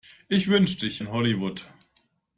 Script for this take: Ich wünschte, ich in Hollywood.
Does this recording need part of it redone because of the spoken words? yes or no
no